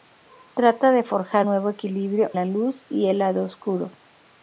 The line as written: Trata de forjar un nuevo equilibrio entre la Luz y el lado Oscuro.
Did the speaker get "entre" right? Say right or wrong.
wrong